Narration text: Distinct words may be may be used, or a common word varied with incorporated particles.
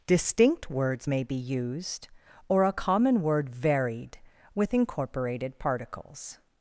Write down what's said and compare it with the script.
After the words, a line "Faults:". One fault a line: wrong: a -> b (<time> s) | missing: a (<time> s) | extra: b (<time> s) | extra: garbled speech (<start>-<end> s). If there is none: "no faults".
Distinct words may be used, or a common word varied with incorporated particles.
Faults:
missing: may be (1.3 s)